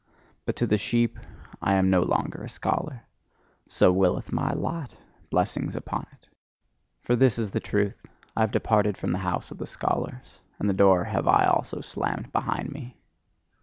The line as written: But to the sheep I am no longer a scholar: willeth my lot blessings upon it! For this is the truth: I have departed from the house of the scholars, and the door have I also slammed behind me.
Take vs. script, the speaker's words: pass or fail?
fail